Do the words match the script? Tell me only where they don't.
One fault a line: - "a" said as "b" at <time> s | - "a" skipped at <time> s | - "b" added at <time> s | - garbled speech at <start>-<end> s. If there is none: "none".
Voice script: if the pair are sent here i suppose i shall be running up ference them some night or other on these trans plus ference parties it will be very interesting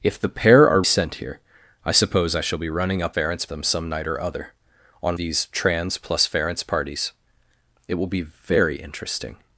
none